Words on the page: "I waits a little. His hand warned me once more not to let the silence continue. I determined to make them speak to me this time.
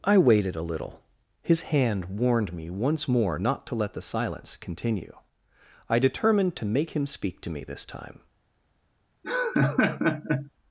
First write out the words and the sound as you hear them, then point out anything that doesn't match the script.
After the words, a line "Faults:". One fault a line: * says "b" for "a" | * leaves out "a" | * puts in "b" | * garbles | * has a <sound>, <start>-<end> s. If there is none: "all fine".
"I waited a little. His hand warned me once more not to let the silence continue. I determined to make him speak to me this time.
Faults:
* says "waited" for "waits"
* says "him" for "them"
* has a laugh, 9.2-10.5 s